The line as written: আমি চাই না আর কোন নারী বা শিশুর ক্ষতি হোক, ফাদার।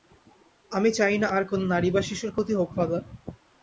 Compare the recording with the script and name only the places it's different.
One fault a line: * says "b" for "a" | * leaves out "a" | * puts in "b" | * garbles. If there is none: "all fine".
all fine